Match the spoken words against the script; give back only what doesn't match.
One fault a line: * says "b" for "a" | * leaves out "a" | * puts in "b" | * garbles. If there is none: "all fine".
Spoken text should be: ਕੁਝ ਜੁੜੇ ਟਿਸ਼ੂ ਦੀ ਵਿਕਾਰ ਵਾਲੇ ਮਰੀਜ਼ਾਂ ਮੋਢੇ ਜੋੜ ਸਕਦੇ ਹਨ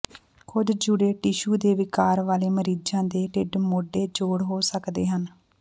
* says "ਦੇ" for "ਦੀ"
* puts in "ਦੇ ਢਿੱਡ"
* puts in "ਹੋ"